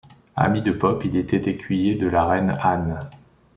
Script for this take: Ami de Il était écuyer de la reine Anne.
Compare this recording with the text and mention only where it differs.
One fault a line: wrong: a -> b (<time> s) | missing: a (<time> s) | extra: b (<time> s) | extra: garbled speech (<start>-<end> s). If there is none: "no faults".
extra: Pope (0.7 s)